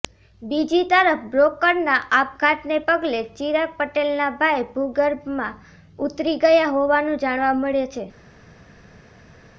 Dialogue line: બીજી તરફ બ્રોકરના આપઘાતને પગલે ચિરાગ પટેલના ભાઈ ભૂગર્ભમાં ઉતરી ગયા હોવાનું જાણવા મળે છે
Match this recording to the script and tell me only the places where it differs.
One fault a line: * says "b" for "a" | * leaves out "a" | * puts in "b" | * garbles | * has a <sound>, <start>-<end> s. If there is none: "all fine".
all fine